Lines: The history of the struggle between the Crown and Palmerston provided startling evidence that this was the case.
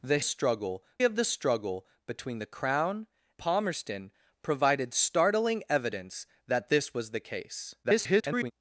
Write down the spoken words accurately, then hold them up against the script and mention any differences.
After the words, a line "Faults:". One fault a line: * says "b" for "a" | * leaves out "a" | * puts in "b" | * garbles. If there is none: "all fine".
The struggle of the struggle between the Crown Palmerston provided startling evidence that this was the case. [garbled]
Faults:
* says "struggle" for "history"
* leaves out "and"
* garbles